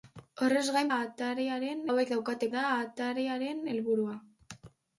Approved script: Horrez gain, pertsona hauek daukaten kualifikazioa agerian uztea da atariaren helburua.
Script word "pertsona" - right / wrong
wrong